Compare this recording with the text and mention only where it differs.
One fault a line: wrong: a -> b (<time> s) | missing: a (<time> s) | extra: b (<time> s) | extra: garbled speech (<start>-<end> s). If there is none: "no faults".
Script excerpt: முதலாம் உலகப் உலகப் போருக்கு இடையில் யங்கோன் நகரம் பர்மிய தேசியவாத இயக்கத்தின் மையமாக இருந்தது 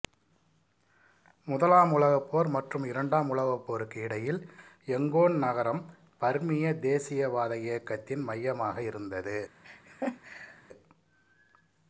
extra: போர் மற்றும் இரண்டாம் (2.3 s)